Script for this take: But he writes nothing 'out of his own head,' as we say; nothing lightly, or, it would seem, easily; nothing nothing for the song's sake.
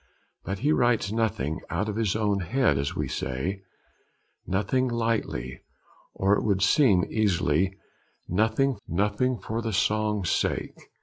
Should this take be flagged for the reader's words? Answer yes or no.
no